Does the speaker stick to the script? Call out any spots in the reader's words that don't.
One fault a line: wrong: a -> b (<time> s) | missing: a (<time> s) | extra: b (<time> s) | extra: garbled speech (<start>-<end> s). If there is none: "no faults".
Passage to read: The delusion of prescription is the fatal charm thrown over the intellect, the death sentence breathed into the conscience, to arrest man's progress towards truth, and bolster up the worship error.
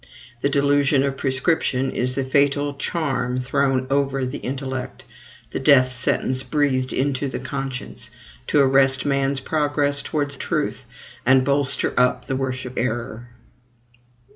no faults